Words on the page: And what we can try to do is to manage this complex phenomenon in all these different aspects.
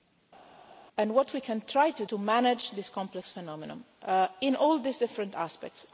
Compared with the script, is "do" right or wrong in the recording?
wrong